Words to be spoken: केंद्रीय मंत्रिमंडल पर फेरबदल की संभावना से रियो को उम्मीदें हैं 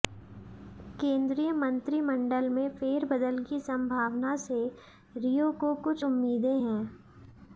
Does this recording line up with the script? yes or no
no